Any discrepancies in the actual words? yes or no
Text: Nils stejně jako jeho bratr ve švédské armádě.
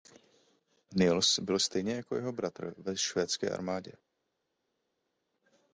yes